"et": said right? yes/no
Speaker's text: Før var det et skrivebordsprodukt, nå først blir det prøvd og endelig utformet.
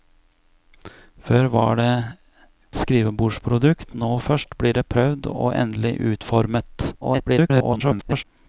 no